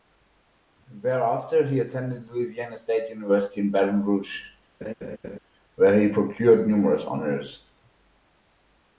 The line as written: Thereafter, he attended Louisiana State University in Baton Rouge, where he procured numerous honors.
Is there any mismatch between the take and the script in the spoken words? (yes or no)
no